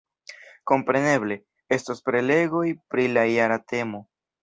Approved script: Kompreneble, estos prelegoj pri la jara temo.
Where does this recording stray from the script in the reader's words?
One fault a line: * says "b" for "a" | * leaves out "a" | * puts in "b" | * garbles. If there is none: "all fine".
all fine